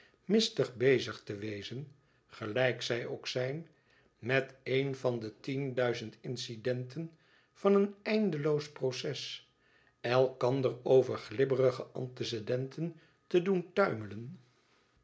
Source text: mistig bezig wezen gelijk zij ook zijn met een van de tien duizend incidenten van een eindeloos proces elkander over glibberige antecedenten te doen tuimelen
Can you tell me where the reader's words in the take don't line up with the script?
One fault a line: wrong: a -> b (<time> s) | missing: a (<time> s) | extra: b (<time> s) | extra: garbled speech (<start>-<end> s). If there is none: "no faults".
extra: te (1.2 s)